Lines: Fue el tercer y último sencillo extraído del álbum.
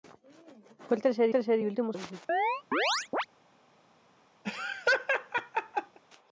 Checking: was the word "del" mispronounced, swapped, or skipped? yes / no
yes